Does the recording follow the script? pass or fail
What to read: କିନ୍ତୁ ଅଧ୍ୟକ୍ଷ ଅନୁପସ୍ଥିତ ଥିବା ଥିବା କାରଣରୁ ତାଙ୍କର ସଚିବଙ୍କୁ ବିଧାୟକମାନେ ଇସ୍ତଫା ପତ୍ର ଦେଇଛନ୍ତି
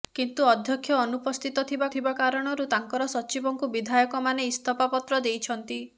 pass